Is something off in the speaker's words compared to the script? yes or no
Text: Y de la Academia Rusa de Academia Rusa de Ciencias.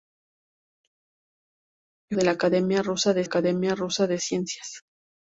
no